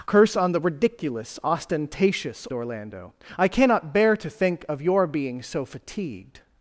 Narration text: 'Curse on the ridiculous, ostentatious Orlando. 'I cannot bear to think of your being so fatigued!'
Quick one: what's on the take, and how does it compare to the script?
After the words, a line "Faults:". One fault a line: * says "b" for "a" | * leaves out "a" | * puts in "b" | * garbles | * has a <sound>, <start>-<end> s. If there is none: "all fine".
'Curse on the ridiculous, ostentatious Orlando. 'I cannot bear to think of your being so fatigued!'
Faults:
all fine